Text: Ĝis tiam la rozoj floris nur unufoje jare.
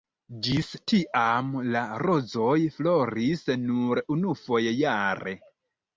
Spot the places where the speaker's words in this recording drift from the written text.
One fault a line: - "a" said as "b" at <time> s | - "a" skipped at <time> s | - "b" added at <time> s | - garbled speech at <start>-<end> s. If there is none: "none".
none